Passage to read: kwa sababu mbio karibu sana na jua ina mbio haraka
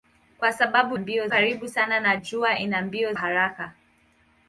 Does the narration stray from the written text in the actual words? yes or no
no